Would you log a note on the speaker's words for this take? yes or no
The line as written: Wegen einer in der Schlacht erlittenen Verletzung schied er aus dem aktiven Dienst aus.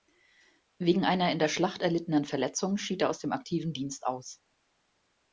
no